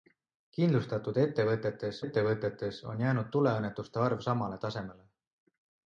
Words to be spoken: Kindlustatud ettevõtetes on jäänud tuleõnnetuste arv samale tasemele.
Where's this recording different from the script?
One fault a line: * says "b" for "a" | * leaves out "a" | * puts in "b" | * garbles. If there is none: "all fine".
* puts in "ettevõtetes"